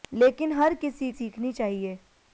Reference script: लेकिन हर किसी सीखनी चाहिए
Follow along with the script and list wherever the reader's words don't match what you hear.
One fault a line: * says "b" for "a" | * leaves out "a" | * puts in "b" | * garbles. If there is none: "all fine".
all fine